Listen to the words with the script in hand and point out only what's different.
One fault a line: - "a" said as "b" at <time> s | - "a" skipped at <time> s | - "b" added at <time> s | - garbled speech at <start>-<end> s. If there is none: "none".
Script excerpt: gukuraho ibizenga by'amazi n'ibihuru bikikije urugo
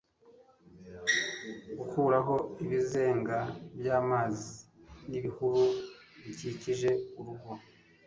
none